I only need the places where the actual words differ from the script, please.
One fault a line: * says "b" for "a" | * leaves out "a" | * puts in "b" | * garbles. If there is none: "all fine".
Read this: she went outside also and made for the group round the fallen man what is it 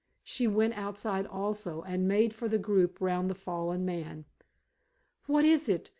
all fine